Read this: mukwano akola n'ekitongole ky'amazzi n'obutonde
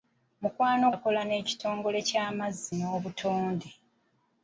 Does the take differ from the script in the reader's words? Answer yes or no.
no